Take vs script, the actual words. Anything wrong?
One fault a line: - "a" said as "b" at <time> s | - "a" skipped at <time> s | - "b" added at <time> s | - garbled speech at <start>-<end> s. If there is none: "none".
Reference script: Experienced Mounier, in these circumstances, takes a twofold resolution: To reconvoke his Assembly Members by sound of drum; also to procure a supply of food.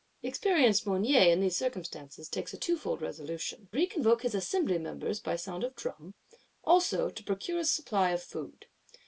- "To" skipped at 3.7 s